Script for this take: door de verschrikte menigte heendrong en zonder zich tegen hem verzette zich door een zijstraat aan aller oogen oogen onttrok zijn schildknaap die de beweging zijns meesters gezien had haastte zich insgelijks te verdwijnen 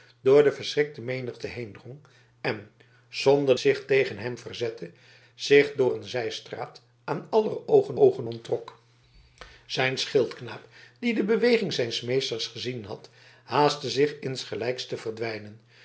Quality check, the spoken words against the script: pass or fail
pass